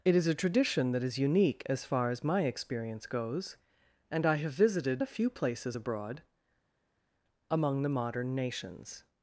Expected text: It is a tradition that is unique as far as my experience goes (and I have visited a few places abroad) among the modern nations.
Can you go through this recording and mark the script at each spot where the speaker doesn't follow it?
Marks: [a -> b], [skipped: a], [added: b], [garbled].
It is a tradition that is unique as far as my experience goes (and I have visited a few places abroad) among the modern nations.